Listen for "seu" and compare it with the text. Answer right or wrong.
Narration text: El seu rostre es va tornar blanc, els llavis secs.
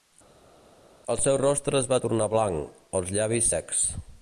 right